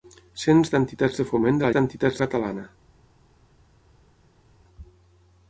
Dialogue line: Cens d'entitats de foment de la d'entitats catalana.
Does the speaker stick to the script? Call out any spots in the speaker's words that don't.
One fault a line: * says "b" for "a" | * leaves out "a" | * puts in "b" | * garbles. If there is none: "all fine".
all fine